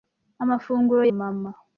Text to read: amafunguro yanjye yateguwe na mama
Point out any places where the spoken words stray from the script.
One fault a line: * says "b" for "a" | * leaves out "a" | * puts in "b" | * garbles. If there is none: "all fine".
* leaves out "yanjye yateguwe na"